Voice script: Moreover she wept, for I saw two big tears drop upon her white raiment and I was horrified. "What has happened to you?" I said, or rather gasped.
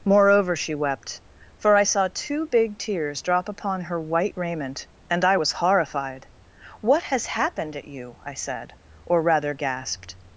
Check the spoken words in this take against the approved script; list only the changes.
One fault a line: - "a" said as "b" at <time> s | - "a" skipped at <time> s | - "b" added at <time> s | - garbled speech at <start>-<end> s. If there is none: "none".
- "to" said as "at" at 7.7 s